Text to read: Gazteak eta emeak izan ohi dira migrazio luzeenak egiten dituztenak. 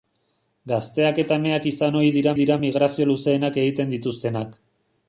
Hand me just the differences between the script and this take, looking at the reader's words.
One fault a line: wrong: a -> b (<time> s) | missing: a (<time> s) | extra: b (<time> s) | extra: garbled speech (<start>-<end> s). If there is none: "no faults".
extra: dira (2.4 s)